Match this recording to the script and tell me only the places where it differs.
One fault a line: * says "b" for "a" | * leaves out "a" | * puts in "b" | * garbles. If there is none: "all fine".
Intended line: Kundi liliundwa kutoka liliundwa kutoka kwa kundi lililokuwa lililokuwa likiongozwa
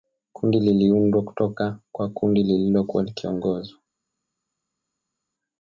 * leaves out "liliundwa kutoka"
* leaves out "lililokuwa"